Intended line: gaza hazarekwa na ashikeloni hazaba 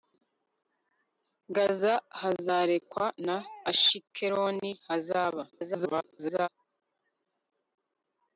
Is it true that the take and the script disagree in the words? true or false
true